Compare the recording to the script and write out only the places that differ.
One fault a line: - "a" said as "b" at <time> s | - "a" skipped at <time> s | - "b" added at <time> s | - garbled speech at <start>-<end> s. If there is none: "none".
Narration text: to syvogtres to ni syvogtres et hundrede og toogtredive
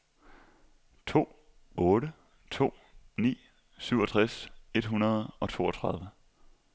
- "syvogtres" said as "otte" at 1.8 s